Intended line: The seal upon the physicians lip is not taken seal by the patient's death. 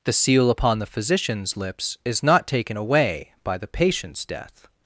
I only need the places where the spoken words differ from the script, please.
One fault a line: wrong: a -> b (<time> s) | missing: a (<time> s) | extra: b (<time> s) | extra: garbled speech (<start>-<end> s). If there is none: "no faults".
wrong: lip -> lips (1.6 s)
wrong: seal -> away (2.8 s)